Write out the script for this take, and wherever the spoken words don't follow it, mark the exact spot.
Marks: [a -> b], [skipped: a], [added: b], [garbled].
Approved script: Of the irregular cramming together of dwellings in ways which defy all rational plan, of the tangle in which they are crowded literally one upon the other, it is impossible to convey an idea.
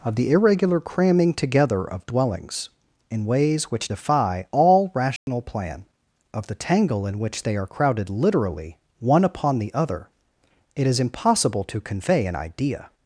Of the irregular cramming together of dwellings in ways which defy all rational plan, of the tangle in which they are crowded literally one upon the other, it is impossible to convey an idea.